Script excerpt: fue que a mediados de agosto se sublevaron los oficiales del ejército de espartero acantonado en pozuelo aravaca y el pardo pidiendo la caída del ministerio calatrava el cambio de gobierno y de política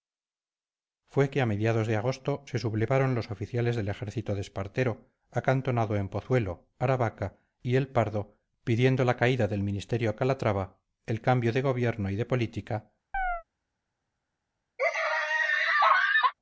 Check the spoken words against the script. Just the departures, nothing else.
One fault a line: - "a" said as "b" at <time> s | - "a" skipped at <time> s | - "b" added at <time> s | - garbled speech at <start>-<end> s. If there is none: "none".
none